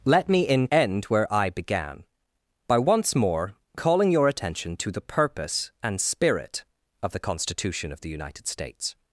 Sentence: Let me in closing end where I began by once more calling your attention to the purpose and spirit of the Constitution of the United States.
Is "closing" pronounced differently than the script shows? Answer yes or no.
yes